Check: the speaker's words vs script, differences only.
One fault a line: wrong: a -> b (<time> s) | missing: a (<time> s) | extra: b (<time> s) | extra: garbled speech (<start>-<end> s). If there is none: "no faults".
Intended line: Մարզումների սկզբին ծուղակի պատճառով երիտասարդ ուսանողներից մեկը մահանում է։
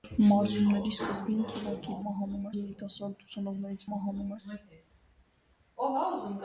wrong: պատճառով -> մահանում (2.1 s)
missing: մեկը (3.9 s)